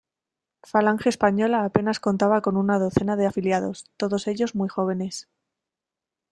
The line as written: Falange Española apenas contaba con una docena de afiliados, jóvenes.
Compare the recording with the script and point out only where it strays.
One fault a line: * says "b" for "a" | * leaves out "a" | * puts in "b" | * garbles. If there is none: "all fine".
* puts in "todos ellos muy"